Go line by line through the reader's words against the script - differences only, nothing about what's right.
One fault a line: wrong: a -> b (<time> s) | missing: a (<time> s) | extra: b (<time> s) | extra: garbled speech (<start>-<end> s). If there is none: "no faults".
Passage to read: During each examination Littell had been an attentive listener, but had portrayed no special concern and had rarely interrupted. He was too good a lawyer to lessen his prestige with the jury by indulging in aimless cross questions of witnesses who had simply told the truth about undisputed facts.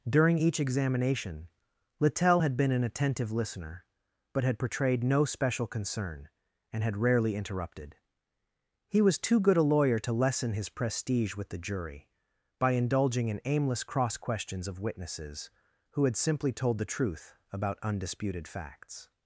no faults